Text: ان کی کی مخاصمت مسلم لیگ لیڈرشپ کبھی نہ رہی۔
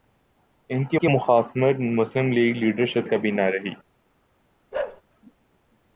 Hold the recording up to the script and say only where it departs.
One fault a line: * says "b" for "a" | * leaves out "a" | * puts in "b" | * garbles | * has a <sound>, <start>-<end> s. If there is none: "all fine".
* has a bark, 4.7-5.0 s